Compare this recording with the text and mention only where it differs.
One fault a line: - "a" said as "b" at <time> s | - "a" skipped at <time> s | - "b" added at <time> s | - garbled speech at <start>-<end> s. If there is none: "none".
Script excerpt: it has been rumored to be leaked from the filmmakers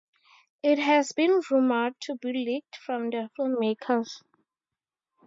none